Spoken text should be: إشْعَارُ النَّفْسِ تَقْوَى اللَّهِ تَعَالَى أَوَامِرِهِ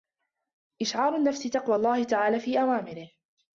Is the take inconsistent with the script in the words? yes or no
yes